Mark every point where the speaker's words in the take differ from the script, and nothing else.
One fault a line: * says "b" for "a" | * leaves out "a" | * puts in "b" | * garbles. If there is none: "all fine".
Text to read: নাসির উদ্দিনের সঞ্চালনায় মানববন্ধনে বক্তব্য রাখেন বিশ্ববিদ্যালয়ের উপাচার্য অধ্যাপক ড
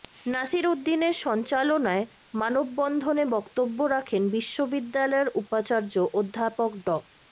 all fine